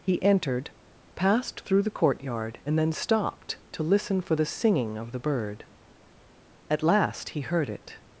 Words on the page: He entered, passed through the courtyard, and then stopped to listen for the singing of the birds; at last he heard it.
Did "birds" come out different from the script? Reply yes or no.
yes